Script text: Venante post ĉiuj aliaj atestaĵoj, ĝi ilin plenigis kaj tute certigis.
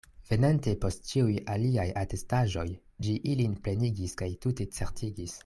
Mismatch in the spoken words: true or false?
false